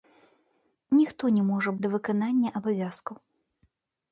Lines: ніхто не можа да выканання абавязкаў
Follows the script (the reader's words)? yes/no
yes